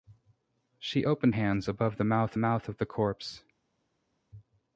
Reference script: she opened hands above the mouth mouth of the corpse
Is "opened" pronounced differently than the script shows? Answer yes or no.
no